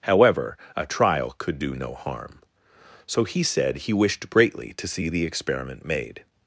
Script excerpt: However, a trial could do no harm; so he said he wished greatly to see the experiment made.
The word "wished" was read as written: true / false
true